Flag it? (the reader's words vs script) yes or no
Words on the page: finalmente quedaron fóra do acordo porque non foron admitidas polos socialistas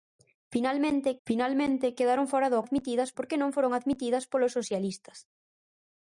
yes